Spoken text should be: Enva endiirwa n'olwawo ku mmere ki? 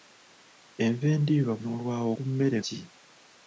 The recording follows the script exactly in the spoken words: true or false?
true